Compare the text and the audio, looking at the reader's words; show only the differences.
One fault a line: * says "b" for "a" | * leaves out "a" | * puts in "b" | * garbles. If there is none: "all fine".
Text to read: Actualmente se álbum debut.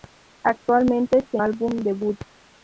all fine